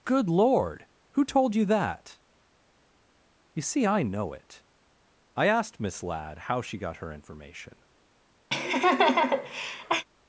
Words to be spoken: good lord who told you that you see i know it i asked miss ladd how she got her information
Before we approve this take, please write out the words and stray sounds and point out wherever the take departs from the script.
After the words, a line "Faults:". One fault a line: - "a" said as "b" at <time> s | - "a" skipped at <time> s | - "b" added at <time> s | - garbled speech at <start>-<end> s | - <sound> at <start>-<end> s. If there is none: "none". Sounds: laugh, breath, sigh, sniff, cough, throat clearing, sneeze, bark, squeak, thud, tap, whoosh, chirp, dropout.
good lord who told you that you see i know it i asked miss ladd how she got her information
Faults:
- laugh at 8.5-10.1 s